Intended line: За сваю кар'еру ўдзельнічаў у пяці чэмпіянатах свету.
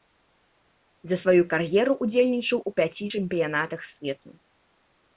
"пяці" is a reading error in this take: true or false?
false